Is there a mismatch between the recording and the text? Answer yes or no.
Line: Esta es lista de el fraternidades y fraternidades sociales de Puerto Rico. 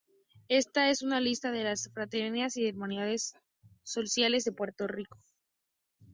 yes